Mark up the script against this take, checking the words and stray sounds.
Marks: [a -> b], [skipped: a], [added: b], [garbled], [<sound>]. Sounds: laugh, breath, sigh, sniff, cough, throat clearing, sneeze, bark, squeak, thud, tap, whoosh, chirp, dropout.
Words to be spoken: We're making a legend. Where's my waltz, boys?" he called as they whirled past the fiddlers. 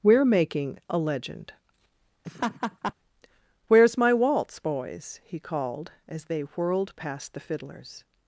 We're making a legend. [laugh] Where's my waltz, boys?" he called as they whirled past the fiddlers.